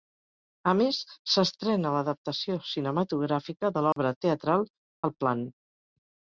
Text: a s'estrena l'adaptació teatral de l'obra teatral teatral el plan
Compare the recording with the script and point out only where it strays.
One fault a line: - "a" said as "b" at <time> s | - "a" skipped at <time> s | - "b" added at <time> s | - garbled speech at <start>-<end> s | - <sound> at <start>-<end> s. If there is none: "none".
- "més" added at 0.8 s
- "teatral" said as "cinematogràfica" at 2.7 s
- dropout at 3.9-4.0 s
- "teatral" skipped at 4.7 s